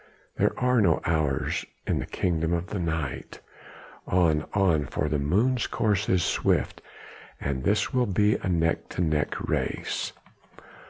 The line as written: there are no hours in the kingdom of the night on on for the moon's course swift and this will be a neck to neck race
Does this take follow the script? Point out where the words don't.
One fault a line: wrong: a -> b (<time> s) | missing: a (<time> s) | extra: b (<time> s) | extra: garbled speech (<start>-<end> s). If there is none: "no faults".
extra: is (6.1 s)